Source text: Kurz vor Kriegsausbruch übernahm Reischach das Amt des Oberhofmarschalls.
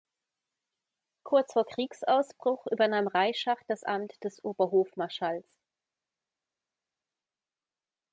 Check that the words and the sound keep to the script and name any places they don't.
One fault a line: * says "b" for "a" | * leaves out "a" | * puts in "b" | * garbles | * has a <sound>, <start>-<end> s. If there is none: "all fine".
all fine